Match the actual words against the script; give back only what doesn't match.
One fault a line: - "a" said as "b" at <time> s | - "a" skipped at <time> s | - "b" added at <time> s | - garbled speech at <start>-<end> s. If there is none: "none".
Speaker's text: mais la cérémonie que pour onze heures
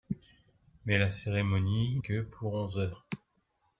none